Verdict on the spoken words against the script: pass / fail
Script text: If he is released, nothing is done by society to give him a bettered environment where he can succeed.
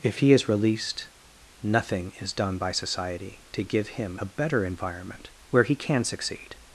fail